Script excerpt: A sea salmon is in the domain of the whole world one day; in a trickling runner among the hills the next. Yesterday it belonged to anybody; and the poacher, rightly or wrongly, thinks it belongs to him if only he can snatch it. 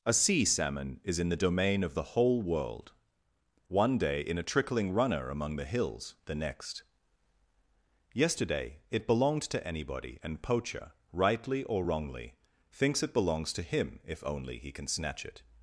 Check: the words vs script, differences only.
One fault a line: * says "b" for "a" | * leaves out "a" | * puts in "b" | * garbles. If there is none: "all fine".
* leaves out "the"